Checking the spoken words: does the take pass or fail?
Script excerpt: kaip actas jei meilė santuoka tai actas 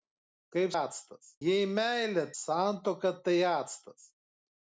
pass